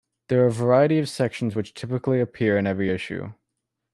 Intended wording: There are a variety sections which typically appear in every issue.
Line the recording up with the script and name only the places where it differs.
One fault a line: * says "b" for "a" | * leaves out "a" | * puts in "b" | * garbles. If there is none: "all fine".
* puts in "of"